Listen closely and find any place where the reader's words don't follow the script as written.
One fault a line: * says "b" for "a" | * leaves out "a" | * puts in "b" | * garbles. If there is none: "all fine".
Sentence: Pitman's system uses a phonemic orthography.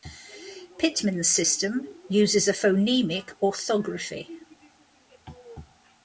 all fine